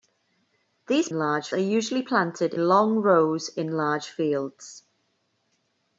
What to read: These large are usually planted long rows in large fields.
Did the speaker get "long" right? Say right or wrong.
right